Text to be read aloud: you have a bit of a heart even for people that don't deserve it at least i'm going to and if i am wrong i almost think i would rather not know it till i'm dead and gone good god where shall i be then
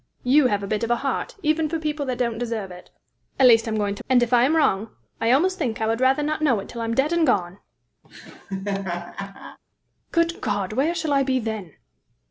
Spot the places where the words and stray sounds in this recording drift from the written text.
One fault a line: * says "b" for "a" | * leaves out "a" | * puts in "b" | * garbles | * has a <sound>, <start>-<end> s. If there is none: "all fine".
* has a laugh, 8.0-9.6 s